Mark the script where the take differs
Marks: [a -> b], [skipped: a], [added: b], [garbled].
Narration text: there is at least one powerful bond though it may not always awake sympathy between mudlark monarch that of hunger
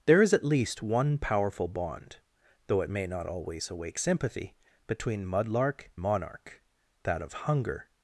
there is at least one powerful bond though it may not always awake sympathy between mudlark monarch that of hunger